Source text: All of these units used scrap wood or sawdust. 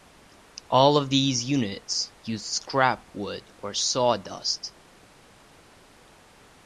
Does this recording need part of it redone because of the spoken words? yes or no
no